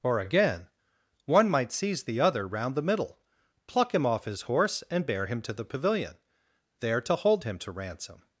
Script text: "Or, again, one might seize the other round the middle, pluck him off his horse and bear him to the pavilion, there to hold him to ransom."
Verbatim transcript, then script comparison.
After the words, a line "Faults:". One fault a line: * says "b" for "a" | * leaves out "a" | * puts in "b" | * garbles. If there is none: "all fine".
"Or, again, one might seize the other round the middle, pluck him off his horse and bear him to the pavilion, there to hold him to ransom."
Faults:
all fine